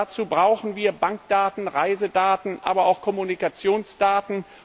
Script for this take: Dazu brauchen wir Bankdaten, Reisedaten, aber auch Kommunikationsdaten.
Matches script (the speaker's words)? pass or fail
pass